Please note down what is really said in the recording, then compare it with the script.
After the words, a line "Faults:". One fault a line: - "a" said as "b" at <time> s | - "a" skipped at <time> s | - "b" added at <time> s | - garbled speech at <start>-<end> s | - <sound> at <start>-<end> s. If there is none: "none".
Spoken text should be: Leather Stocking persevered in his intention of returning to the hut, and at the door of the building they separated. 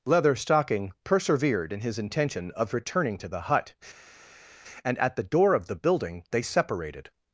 Leather Stocking persevered in his intention of returning to the hut, and at the door of the building they separated.
Faults:
none